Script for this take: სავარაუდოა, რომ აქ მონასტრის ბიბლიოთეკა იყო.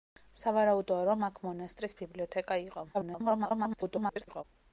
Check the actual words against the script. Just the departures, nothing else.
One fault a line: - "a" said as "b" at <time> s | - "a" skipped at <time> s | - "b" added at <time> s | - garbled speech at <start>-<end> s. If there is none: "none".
- garbled speech at 2.9-4.4 s